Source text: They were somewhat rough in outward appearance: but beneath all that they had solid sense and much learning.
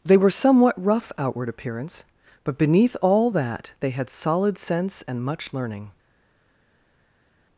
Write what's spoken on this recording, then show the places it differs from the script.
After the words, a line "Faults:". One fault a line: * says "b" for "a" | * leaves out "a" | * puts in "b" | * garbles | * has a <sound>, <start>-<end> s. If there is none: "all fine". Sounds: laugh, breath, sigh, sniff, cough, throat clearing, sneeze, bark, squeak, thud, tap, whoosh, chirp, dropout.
They were somewhat rough outward appearance: but beneath all that they had solid sense and much learning.
Faults:
* leaves out "in"